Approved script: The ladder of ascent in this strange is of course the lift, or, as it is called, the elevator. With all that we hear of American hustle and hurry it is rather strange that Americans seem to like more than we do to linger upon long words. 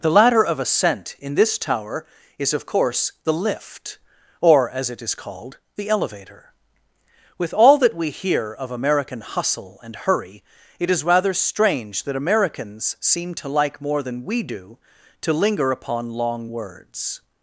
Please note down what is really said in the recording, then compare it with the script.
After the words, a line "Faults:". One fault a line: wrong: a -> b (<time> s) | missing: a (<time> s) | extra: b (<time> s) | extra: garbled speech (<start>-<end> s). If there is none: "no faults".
The ladder of ascent in this tower is of course the lift, or, as it is called, the elevator. With all that we hear of American hustle and hurry it is rather strange that Americans seem to like more than we do to linger upon long words.
Faults:
wrong: strange -> tower (1.6 s)